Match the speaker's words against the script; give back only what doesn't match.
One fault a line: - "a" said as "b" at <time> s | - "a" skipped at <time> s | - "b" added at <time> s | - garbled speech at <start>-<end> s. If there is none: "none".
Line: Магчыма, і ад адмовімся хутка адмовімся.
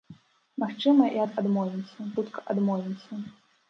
none